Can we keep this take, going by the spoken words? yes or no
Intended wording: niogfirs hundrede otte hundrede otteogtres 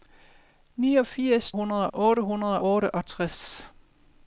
yes